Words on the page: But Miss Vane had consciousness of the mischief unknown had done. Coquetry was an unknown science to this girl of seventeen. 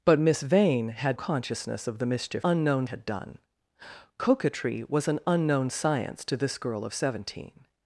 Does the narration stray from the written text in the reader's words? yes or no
no